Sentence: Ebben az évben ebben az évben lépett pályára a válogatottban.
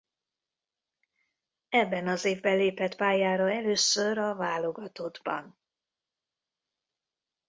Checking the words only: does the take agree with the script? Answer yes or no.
no